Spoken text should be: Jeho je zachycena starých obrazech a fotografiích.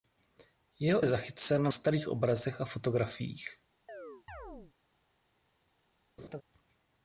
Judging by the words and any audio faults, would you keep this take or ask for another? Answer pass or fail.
fail